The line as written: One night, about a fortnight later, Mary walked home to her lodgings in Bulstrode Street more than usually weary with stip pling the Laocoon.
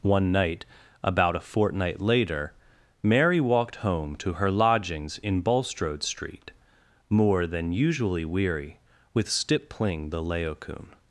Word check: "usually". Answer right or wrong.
right